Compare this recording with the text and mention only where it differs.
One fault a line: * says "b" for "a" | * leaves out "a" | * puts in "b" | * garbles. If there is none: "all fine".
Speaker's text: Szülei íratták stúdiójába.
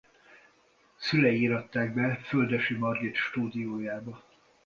* puts in "be Földessy Margit"